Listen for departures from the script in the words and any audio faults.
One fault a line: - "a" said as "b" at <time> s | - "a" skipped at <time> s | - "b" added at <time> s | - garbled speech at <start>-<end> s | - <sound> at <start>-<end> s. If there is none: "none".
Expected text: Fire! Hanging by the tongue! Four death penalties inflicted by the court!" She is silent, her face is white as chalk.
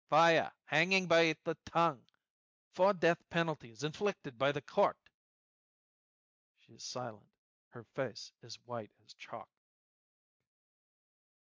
none